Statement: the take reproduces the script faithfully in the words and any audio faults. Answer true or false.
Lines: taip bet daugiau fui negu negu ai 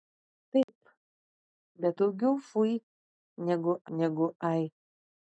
false